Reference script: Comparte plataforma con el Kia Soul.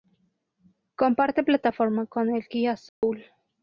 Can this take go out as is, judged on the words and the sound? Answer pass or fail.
fail